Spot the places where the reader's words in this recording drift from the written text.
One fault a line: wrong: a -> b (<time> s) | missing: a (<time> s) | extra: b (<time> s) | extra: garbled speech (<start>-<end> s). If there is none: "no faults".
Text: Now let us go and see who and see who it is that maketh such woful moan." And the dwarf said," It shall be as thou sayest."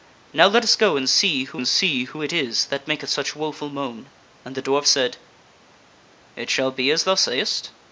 no faults